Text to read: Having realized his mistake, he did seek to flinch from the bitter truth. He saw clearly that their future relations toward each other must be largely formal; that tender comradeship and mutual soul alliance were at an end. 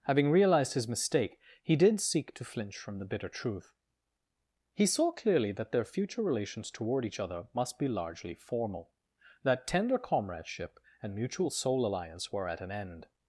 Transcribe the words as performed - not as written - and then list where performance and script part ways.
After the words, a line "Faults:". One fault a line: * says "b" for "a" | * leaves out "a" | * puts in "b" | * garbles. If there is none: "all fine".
Having realized his mistake, he did seek to flinch from the bitter truth. He saw clearly that their future relations toward each other must be largely formal; that tender comradeship and mutual soul alliance were at an end.
Faults:
all fine